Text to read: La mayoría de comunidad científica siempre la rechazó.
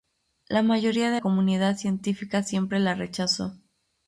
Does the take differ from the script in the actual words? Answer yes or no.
no